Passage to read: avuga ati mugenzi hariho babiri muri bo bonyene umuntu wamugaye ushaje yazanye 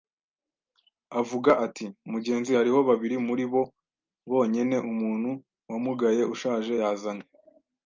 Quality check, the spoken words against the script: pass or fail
pass